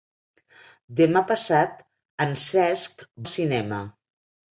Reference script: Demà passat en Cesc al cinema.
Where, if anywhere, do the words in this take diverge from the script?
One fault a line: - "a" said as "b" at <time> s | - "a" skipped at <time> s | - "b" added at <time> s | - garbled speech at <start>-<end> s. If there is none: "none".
none